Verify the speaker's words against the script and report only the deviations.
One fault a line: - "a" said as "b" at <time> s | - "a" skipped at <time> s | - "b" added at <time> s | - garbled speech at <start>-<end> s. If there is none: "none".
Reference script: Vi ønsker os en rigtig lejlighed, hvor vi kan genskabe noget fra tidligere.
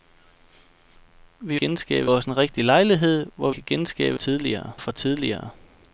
- "ønsker" said as "genskabe" at 1.6 s
- "vi" skipped at 3.5 s
- "noget" said as "tidligere" at 4.1 s